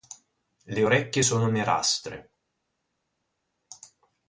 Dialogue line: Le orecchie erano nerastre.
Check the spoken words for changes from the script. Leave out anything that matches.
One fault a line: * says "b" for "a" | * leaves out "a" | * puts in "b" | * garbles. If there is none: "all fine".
* says "sono" for "erano"